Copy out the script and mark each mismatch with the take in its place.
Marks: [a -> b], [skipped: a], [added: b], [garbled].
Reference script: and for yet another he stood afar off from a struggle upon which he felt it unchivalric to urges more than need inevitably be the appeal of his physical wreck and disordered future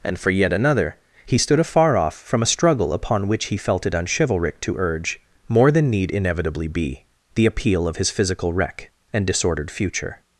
and for yet another he stood afar off from a struggle upon which he felt it unchivalric to [urges -> urge] more than need inevitably be the appeal of his physical wreck and disordered future